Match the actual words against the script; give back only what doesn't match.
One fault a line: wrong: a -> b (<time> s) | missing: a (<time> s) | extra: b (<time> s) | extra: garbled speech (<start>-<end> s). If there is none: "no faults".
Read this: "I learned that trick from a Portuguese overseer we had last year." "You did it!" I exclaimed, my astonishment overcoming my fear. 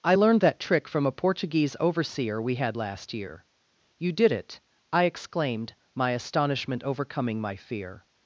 no faults